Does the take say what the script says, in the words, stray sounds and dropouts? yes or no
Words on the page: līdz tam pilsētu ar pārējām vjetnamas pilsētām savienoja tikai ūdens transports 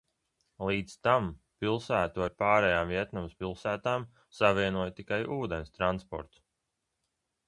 yes